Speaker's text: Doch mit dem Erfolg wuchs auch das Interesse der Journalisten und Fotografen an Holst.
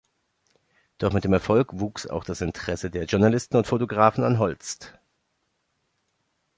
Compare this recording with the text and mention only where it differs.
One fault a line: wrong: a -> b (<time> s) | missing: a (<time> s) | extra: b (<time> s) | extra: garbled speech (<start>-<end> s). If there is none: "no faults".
no faults